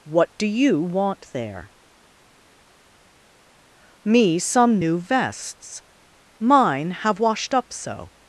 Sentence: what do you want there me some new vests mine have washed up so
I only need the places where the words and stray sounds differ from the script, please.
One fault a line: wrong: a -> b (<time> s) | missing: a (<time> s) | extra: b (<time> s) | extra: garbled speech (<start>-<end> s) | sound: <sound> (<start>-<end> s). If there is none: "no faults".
no faults